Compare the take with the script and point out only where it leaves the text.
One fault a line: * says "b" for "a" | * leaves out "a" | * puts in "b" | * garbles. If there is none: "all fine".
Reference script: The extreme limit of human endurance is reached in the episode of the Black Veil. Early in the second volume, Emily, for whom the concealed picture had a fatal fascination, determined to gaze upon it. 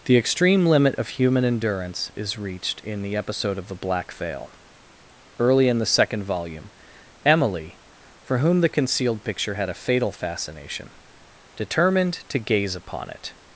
all fine